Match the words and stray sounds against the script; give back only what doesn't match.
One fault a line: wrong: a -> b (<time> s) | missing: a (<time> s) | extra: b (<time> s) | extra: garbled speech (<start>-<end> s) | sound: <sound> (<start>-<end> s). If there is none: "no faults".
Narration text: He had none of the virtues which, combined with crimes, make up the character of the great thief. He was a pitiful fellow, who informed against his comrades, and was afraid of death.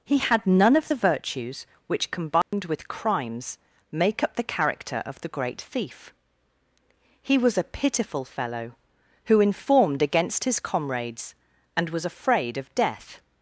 sound: dropout (2.4-2.5 s)